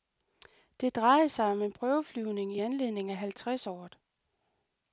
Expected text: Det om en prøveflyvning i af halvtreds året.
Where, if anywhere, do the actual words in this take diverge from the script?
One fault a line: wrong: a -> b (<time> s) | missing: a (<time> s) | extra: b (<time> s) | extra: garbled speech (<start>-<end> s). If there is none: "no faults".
extra: drejede sig (0.9 s)
extra: anledning (2.6 s)